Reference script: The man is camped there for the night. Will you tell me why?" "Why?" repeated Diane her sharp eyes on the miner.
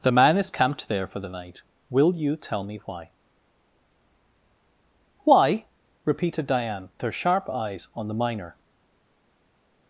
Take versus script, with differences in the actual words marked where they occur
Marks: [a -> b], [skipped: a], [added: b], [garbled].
The man is camped there for the night. Will you tell me why?" "Why?" repeated Diane her sharp eyes on the miner.